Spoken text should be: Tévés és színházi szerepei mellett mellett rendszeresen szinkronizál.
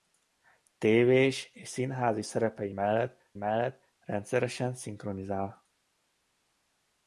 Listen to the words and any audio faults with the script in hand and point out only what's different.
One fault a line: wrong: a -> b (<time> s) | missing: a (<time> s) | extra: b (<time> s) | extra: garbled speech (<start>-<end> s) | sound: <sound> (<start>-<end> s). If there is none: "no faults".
no faults